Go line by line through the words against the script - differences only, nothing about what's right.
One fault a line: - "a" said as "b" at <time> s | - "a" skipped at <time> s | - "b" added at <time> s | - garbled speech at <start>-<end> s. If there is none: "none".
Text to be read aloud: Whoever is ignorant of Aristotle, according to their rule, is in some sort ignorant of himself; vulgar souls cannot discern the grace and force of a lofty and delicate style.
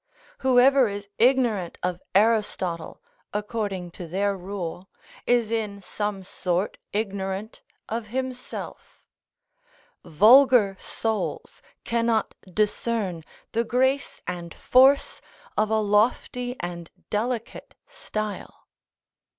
none